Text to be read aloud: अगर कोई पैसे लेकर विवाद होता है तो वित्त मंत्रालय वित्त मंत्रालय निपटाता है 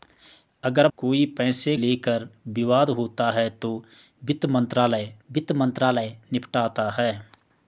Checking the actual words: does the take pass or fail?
pass